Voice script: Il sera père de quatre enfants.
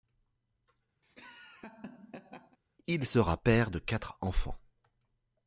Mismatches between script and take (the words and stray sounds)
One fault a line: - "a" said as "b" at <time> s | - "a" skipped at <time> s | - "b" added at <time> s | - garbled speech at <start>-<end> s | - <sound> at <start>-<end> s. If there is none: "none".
- laugh at 1.0-2.6 s